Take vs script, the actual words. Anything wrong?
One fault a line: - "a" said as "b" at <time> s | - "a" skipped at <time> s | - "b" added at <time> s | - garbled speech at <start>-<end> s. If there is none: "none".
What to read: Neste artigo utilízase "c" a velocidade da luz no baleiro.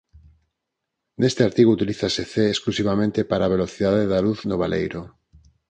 - "exclusivamente para" added at 2.5 s